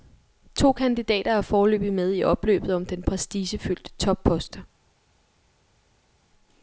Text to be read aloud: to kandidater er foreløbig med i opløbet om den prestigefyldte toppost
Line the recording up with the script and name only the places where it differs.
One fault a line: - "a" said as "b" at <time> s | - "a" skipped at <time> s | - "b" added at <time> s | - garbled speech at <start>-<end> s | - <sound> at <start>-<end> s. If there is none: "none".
none